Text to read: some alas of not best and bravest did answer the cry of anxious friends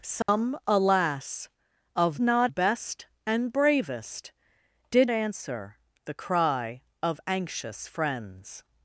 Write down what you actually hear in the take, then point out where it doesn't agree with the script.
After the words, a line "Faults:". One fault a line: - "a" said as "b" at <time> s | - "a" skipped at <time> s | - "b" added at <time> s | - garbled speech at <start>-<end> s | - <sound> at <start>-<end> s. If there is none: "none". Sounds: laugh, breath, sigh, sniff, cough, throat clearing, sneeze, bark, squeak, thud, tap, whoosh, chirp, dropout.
some alas of not best and bravest did answer the cry of anxious friends
Faults:
- dropout at 0.2-0.3 s